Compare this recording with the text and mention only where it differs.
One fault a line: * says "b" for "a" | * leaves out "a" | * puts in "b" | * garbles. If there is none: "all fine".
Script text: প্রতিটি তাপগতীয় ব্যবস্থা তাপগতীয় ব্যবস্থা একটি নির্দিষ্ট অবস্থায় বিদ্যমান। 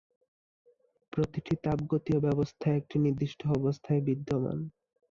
* leaves out "তাপগতীয় ব্যবস্থা"